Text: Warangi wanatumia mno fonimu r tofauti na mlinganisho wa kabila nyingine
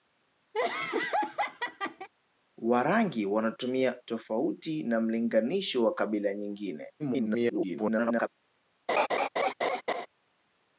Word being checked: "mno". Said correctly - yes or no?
no